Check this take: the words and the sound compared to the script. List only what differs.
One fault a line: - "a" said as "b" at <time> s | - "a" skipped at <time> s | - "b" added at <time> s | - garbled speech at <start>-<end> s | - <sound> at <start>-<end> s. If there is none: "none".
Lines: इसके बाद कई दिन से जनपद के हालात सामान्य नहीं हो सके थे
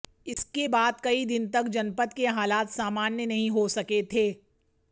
- dropout at 0.3-0.4 s
- "से" said as "तक" at 1.5 s